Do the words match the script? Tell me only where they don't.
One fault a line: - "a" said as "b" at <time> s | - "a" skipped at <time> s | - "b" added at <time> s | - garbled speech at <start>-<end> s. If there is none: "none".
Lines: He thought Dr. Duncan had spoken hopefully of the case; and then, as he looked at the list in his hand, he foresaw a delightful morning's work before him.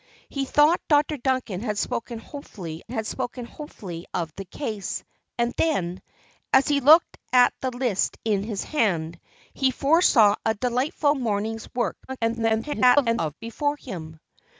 - "had spoken hopefully" added at 2.9 s
- garbled speech at 12.1-13.3 s